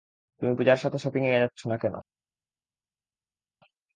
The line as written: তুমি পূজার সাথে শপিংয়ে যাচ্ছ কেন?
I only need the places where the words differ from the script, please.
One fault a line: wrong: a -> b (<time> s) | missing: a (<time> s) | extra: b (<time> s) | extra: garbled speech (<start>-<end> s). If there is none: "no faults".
extra: না (1.7 s)